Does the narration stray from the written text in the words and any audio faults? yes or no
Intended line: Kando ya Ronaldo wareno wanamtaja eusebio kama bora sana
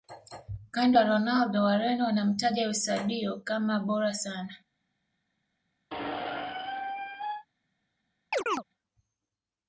yes